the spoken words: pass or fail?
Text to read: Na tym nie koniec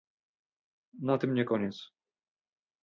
pass